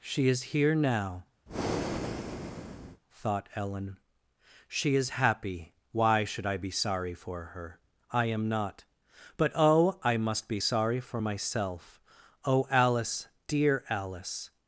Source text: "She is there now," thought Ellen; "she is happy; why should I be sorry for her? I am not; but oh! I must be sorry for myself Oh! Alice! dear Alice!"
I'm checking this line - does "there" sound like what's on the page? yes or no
no